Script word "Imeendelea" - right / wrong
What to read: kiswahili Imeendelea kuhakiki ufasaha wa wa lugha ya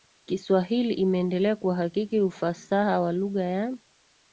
right